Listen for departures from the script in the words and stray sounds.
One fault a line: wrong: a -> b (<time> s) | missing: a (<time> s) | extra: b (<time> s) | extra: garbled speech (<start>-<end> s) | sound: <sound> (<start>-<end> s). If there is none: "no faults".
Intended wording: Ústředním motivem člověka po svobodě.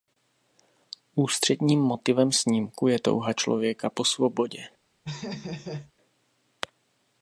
extra: snímku je touha (2.3 s)
sound: laugh (5.0-5.9 s)